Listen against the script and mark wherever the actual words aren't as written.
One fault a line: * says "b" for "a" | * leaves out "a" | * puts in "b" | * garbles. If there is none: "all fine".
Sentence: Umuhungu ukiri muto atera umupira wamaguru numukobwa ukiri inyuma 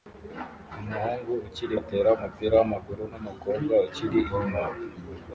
* leaves out "muto"